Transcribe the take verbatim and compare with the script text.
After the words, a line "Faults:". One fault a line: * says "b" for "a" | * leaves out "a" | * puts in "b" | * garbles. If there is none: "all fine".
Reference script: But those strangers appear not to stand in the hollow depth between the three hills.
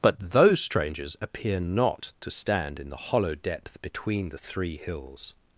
But those strangers appear not to stand in the hollow depth between the three hills.
Faults:
all fine